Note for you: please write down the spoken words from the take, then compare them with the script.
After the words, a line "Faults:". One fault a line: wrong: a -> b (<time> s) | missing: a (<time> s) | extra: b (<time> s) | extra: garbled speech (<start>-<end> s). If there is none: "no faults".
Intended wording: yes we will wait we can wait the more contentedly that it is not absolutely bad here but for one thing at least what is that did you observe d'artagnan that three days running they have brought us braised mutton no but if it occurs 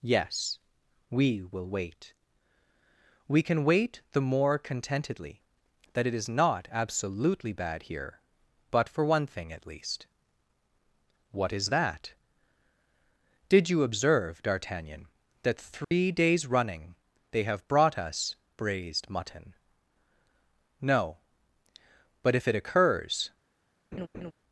yes we will wait we can wait the more contentedly that it is not absolutely bad here but for one thing at least what is that did you observe d'artagnan that three days running they have brought us braised mutton no but if it occurs
Faults:
no faults